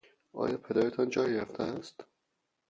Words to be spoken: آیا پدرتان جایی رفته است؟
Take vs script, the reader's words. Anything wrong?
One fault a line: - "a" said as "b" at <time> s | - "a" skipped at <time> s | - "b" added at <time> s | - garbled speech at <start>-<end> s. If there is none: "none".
none